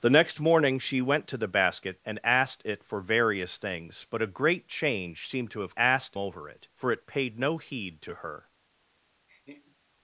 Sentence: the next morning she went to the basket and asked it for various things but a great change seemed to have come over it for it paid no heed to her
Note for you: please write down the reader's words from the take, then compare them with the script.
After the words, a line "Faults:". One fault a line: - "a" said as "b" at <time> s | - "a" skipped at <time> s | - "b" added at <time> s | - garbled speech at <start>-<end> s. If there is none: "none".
the next morning she went to the basket and asked it for various things but a great change seemed to have asked over it for it paid no heed to her
Faults:
- "come" said as "asked" at 5.8 s